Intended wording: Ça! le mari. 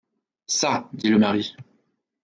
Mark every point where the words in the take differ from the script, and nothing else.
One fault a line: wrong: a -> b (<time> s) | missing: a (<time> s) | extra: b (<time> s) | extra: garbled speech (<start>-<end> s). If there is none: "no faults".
extra: dit (0.9 s)